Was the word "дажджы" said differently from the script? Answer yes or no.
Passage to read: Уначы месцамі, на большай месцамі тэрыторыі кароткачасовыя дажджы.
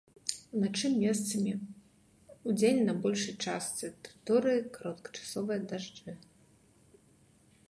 no